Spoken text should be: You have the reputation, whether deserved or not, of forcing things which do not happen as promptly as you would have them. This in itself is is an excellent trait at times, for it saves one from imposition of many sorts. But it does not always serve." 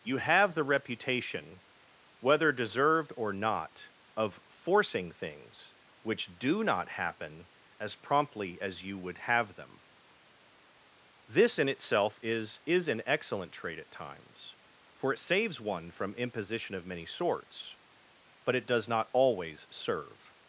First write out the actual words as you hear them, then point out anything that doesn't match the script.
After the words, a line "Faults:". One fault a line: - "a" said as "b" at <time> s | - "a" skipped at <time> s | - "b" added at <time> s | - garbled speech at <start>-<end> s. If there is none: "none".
You have the reputation, whether deserved or not, of forcing things which do not happen as promptly as you would have them. This in itself is is an excellent trait at times, for it saves one from imposition of many sorts. But it does not always serve."
Faults:
none